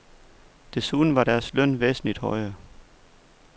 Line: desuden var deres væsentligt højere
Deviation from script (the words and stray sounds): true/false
true